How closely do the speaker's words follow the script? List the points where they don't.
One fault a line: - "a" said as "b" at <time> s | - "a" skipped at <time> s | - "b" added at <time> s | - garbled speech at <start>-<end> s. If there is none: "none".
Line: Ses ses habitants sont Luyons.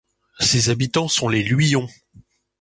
- "ses" skipped at 0.7 s
- "les" added at 1.3 s